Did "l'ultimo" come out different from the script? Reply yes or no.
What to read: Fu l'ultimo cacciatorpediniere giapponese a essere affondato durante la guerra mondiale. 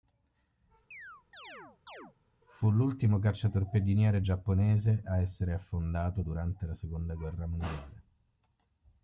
no